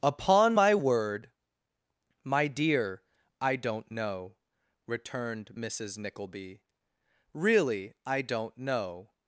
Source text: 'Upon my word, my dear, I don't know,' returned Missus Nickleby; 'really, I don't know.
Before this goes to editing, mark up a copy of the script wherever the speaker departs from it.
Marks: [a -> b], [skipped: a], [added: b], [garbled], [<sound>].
'Upon my word, my dear, I don't know,' returned Missus Nickleby; 'really, I don't know.